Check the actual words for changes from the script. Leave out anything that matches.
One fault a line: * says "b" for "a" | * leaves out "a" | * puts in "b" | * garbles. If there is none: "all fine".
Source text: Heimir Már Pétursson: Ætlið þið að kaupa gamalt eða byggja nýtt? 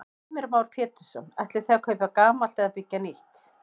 all fine